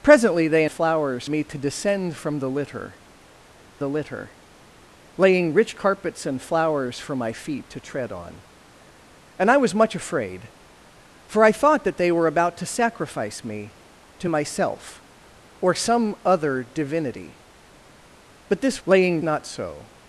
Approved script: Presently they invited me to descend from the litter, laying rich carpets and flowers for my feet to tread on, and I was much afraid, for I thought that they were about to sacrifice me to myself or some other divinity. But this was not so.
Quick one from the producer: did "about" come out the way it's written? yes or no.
yes